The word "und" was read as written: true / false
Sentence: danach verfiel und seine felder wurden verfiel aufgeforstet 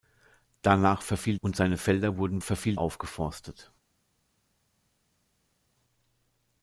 true